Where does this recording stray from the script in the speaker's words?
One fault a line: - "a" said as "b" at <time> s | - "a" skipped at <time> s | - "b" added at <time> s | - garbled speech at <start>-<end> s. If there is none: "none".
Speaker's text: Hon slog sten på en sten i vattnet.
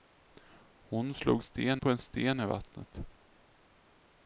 none